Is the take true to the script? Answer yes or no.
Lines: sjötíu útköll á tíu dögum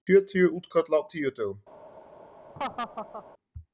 yes